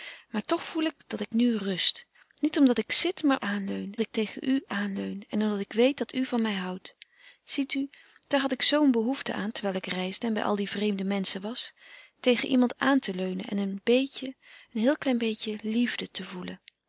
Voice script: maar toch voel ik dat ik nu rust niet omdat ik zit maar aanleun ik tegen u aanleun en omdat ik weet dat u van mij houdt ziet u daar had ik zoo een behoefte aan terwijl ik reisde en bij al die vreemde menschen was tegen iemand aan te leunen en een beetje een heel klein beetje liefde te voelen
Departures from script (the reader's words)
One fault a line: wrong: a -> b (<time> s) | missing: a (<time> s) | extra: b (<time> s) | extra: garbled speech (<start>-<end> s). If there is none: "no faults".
no faults